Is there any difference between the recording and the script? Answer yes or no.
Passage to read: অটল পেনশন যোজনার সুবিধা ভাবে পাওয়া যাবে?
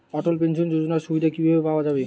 yes